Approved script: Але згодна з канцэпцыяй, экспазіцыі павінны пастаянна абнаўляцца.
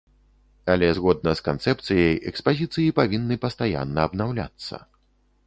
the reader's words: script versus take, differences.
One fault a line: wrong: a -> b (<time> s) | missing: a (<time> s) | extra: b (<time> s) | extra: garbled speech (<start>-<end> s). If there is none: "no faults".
no faults